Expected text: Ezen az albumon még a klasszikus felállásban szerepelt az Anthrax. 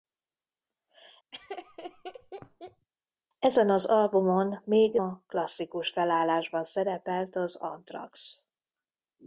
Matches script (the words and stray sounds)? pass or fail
fail